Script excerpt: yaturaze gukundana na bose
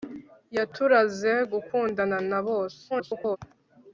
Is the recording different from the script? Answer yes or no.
yes